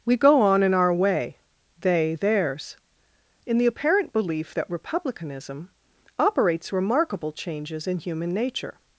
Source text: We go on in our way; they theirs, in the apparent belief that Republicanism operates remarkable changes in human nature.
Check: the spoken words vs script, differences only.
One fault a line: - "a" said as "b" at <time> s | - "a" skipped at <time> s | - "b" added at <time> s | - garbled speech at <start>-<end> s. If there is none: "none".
none